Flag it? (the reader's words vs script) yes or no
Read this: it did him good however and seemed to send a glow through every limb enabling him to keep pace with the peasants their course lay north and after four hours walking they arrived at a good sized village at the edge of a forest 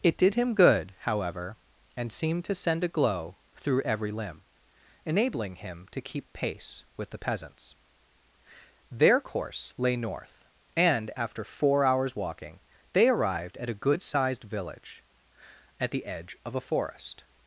no